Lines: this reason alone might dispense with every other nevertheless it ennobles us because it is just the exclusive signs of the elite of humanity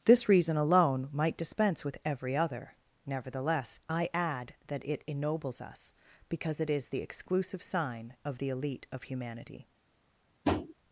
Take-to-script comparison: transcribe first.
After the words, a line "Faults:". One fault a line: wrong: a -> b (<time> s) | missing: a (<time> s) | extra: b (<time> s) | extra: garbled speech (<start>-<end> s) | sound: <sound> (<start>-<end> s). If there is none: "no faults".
this reason alone might dispense with every other nevertheless i add that it ennobles us because it is the exclusive sign of the elite of humanity
Faults:
extra: i add that (3.9 s)
missing: just (6.9 s)
wrong: signs -> sign (7.6 s)
sound: tap (10.4-10.7 s)